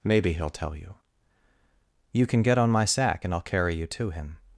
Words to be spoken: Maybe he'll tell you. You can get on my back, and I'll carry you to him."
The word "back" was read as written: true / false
false